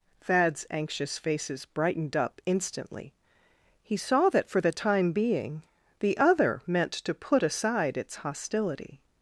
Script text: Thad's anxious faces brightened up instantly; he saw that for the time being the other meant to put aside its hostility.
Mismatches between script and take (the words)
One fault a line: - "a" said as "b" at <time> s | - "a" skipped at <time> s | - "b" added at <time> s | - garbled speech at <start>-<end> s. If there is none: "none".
none